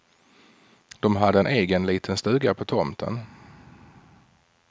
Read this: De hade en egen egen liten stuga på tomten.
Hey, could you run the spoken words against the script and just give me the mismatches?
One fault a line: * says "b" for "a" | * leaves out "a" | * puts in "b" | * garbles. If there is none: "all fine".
* leaves out "egen"